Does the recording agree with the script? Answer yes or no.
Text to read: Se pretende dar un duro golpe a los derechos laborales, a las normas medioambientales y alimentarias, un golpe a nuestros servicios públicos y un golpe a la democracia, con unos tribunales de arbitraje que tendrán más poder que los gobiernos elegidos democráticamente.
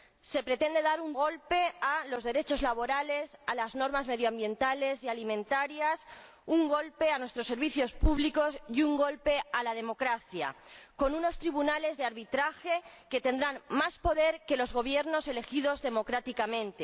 no